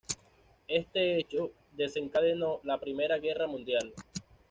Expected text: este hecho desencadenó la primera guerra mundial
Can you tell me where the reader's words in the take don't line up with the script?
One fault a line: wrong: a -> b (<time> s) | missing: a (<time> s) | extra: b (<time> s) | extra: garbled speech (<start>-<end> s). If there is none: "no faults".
no faults